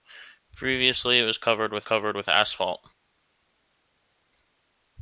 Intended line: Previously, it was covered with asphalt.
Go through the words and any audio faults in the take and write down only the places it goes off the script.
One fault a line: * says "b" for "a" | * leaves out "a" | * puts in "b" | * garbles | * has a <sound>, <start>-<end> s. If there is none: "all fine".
* puts in "covered with"